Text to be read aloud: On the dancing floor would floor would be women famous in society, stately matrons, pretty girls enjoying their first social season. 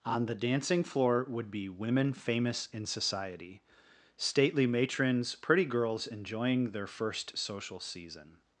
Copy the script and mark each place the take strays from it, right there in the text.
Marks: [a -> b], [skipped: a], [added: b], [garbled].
On the dancing floor would [skipped: floor would] be women famous in society, stately matrons, pretty girls enjoying their first social season.